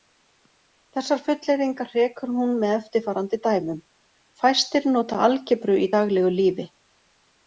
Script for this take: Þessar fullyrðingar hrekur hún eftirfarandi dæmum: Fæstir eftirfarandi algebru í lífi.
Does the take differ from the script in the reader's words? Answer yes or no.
yes